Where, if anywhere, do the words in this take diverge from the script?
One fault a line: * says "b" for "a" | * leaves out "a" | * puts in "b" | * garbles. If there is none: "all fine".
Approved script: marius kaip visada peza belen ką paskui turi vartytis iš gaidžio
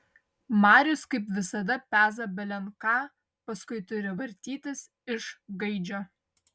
all fine